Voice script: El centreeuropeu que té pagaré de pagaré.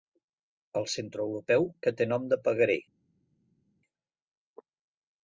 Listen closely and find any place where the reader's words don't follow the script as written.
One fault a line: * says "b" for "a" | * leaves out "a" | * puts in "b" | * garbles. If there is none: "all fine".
* says "nom" for "pagaré"